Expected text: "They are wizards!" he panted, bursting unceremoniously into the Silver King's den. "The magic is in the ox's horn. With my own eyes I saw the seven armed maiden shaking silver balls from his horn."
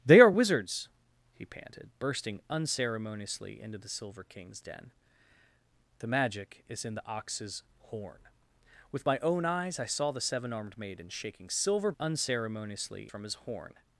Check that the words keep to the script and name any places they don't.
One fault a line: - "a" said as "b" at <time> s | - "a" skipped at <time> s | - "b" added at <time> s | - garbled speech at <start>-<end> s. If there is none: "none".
- "balls" said as "unceremoniously" at 12.0 s